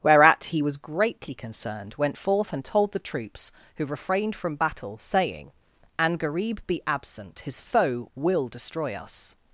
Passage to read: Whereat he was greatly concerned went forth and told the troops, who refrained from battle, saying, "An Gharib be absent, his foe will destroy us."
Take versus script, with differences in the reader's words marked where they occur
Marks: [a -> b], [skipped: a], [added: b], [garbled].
Whereat he was greatly concerned went forth and told the troops, who refrained from battle, saying, "An Gharib be absent, his foe will destroy us."